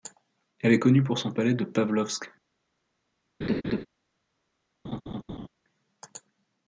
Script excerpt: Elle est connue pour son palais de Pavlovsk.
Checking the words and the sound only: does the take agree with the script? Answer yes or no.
no